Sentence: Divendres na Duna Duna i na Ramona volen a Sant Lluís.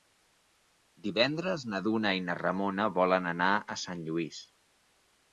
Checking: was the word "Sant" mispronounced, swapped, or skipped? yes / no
no